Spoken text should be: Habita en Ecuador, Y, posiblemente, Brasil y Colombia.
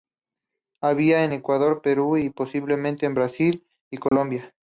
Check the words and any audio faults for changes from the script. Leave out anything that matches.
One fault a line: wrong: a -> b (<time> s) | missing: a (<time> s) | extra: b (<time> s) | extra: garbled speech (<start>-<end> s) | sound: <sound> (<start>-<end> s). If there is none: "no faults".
extra: Perú (1.8 s)
extra: en (3.0 s)
sound: dropout (4.1-4.1 s)